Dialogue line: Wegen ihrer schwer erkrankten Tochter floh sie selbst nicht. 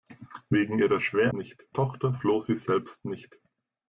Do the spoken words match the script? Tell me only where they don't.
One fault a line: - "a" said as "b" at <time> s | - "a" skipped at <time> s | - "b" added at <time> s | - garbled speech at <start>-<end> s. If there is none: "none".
- "erkrankten" said as "nicht" at 1.3 s